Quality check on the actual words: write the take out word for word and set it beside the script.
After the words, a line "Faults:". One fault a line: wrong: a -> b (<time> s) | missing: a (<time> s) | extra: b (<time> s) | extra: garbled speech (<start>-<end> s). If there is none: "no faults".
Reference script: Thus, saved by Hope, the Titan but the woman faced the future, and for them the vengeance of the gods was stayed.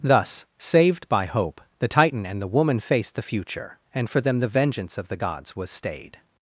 Thus, saved by Hope, the Titan and the woman faced the future, and for them the vengeance of the gods was stayed.
Faults:
wrong: but -> and (2.3 s)